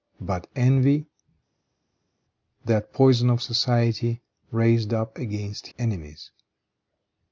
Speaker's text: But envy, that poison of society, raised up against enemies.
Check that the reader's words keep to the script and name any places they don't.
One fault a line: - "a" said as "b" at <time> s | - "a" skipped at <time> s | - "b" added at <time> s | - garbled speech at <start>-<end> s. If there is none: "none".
none